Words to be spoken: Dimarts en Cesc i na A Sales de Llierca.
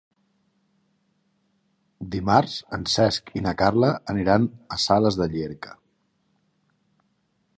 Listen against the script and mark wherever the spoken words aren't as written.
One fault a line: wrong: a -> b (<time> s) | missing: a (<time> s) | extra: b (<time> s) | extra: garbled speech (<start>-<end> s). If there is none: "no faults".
extra: Carla aniran (3.6 s)